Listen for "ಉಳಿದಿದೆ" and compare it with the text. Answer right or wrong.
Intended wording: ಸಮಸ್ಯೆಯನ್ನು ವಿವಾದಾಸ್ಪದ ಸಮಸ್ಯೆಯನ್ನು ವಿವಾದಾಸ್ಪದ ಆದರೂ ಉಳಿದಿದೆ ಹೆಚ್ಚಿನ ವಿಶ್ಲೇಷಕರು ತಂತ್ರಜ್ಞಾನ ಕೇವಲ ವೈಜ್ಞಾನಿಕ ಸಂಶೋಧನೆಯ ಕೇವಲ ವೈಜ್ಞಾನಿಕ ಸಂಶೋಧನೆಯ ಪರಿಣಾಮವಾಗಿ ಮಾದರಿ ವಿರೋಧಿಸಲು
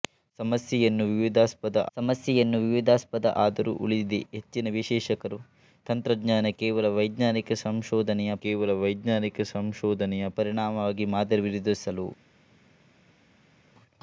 right